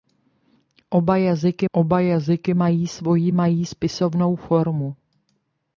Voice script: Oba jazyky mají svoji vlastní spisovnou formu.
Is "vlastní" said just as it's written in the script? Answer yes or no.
no